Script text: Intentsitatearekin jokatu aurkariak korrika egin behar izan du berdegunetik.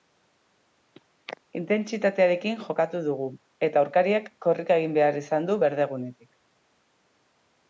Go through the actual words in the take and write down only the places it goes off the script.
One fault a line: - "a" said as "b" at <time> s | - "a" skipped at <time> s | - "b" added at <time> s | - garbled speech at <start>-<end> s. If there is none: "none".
- "dugu eta" added at 3.1 s